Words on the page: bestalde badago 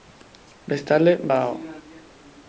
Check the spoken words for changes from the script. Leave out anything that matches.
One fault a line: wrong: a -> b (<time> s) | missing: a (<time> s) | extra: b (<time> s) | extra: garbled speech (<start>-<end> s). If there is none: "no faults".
no faults